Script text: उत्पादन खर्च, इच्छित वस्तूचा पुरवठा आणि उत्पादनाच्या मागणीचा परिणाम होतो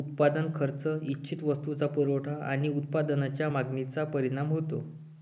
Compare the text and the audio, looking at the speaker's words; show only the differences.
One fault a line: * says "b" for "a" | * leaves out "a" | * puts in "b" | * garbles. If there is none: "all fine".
all fine